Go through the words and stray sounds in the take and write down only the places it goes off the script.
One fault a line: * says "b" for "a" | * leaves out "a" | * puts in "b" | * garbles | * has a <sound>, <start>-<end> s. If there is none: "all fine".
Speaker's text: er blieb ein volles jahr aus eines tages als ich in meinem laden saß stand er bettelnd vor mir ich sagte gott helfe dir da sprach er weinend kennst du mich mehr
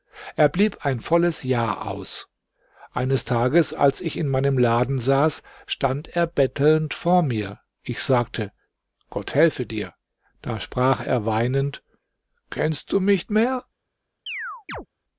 * has a chirp, 14.3-14.9 s